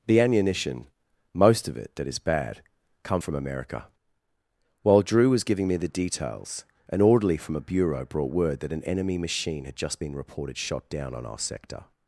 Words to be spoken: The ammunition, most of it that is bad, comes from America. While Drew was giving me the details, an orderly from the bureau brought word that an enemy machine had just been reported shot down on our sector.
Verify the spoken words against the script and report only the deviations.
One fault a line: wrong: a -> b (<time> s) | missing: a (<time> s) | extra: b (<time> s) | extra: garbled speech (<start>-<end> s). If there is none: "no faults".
wrong: comes -> come (3.0 s)
wrong: the -> a (7.6 s)